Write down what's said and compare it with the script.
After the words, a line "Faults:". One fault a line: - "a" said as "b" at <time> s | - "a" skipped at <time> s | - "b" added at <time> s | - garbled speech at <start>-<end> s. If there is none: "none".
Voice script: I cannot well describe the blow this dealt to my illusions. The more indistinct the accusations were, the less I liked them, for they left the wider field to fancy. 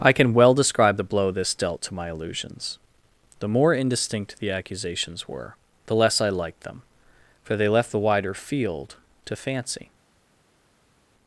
I can well describe the blow this dealt to my illusions. The more indistinct the accusations were, the less I liked them, for they left the wider field to fancy.
Faults:
- "cannot" said as "can" at 0.1 s